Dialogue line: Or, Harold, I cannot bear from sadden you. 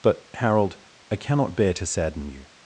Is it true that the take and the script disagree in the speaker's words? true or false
true